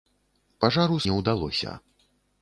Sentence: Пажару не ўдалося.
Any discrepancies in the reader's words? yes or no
no